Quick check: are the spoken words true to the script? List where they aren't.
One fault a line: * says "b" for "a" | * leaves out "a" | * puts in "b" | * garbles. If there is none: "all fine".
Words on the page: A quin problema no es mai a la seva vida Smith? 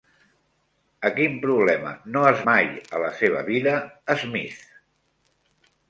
all fine